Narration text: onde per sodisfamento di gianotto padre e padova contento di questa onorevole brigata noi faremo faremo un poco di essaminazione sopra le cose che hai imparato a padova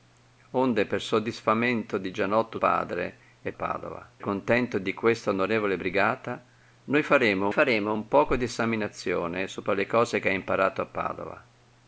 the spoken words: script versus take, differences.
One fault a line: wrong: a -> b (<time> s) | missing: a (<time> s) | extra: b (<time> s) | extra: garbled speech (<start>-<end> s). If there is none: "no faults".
no faults